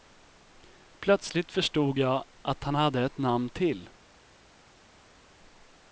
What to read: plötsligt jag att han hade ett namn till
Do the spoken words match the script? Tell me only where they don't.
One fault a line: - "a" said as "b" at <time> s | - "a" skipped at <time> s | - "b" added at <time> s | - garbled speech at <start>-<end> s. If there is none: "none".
- "förstod" added at 1.5 s